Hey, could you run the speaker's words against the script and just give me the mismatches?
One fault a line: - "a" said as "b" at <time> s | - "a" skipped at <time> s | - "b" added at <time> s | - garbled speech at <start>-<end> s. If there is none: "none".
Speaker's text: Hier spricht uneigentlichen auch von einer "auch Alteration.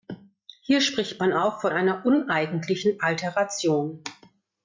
- "uneigentlichen" said as "man" at 1.2 s
- "auch" said as "uneigentlichen" at 2.0 s